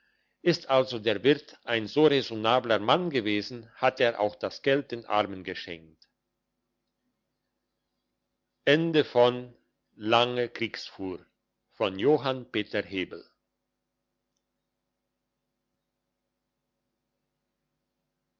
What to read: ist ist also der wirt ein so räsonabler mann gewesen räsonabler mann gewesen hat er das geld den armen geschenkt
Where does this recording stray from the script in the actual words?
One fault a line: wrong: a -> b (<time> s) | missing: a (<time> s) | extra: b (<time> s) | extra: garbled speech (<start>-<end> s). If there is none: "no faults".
missing: ist (0.7 s)
missing: räsonabler mann gewesen (3.7 s)
extra: auch (4.2 s)